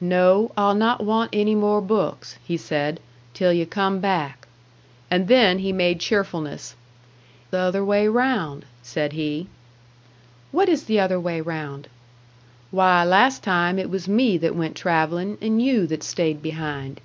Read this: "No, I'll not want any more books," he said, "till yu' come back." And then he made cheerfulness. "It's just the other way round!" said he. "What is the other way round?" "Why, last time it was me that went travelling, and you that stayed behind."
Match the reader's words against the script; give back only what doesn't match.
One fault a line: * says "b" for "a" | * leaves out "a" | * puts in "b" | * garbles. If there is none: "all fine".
* leaves out "It's just"